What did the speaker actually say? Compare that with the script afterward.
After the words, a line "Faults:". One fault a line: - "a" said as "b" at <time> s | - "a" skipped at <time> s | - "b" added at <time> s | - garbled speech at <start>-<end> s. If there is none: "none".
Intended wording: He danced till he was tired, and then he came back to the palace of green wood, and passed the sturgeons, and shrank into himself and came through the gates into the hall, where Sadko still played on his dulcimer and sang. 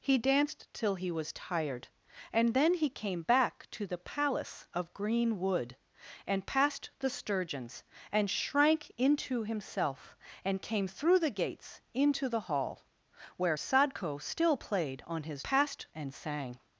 He danced till he was tired, and then he came back to the palace of green wood, and passed the sturgeons, and shrank into himself and came through the gates into the hall, where Sadko still played on his passed and sang.
Faults:
- "dulcimer" said as "passed" at 15.4 s